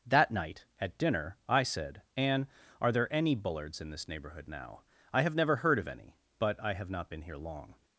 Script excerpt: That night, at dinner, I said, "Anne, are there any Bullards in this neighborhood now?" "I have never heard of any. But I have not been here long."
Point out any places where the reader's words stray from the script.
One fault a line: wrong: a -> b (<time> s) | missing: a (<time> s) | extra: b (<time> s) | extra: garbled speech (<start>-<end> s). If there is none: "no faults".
no faults